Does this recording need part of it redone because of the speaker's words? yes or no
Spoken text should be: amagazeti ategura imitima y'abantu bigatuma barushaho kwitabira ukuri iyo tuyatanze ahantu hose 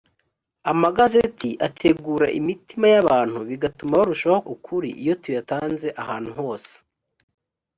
yes